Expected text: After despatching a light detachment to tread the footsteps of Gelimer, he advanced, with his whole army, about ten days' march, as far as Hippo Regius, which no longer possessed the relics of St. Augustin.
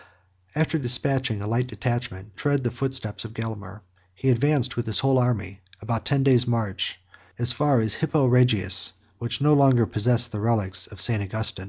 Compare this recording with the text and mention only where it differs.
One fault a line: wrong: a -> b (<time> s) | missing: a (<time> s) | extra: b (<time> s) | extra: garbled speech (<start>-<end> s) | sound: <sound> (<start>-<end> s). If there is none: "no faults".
missing: to (2.4 s)